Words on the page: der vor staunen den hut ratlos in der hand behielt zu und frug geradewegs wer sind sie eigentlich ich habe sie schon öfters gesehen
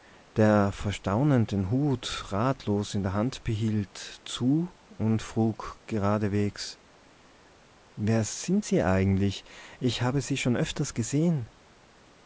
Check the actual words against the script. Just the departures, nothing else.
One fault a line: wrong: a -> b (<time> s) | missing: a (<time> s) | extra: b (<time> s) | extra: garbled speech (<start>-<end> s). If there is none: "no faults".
no faults